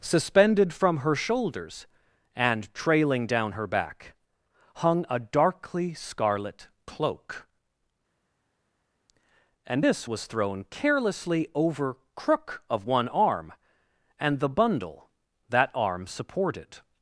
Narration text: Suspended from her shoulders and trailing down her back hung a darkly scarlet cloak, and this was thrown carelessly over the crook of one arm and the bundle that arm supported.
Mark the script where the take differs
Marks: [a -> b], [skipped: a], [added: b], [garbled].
Suspended from her shoulders and trailing down her back hung a darkly scarlet cloak, and this was thrown carelessly over [skipped: the] crook of one arm and the bundle that arm supported.